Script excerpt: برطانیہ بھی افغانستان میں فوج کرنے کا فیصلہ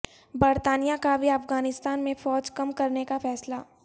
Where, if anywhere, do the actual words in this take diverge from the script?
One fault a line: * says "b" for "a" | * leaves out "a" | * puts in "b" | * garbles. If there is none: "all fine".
* puts in "کا"
* puts in "کم"